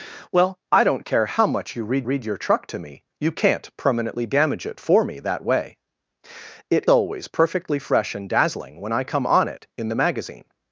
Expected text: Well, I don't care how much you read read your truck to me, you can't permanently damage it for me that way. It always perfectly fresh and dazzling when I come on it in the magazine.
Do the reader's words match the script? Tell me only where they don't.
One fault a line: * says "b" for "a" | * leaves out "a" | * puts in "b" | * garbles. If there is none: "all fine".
all fine